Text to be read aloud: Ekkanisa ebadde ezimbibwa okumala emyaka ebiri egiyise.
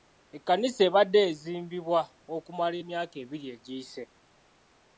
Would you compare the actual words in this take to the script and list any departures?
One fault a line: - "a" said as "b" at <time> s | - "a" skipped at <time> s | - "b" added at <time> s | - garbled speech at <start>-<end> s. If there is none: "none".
none